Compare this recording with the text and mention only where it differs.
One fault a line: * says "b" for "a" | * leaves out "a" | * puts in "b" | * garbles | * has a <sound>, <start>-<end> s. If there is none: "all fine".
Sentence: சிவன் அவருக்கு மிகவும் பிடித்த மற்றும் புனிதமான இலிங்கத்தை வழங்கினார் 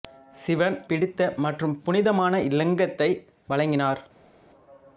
* leaves out "அவருக்கு மிகவும்"